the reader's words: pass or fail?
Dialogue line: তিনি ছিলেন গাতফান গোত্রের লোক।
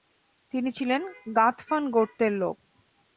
pass